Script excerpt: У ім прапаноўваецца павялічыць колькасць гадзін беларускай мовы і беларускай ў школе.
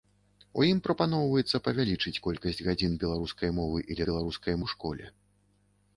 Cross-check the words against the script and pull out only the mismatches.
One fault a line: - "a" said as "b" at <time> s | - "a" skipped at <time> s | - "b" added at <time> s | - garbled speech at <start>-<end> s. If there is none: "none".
none